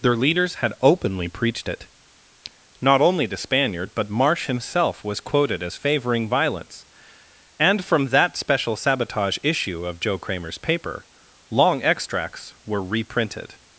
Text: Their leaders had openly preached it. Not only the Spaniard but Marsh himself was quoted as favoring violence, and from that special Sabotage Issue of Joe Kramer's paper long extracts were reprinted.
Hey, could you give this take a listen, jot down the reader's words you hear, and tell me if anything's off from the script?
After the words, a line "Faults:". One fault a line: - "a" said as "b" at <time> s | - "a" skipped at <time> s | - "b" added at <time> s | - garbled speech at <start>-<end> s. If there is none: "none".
Their leaders had openly preached it. Not only the Spaniard but Marsh himself was quoted as favoring violence, and from that special Sabotage Issue of Joe Kramer's paper long extracts were reprinted.
Faults:
none